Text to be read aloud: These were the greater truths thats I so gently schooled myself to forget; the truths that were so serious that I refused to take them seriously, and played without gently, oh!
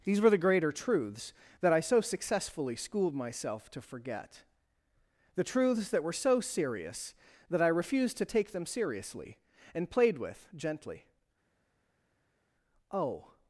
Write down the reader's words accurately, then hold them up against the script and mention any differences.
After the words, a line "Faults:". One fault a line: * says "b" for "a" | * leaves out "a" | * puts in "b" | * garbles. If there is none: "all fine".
These were the greater truths that I so successfully schooled myself to forget; the truths that were so serious that I refused to take them seriously, and played with gently, oh!
Faults:
* says "that" for "thats"
* says "successfully" for "gently"
* says "with" for "without"